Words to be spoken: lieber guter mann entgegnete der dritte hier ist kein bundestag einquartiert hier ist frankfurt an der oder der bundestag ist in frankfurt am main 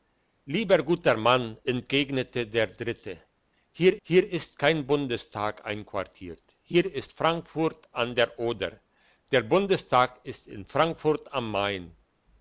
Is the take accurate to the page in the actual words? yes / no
no